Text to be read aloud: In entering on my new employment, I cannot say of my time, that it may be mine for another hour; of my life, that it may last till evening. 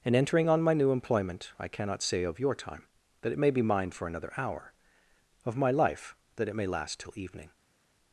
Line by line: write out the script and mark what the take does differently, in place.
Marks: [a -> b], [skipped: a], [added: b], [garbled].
In entering on my new employment, I cannot say of [my -> your] time, that it may be mine for another hour; of my life, that it may last till evening.